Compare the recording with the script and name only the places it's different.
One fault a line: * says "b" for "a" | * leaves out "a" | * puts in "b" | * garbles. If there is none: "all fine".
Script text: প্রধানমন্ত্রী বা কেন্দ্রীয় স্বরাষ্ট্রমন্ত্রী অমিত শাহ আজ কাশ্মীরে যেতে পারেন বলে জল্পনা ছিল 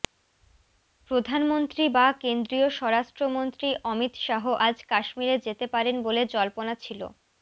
all fine